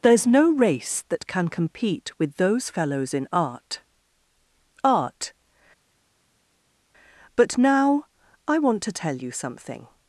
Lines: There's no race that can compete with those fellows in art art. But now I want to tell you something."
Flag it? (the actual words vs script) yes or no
no